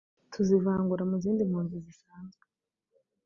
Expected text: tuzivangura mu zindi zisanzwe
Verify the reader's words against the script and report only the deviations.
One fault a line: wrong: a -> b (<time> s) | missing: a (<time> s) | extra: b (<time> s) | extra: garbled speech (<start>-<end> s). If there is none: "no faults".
extra: mpunzi (1.5 s)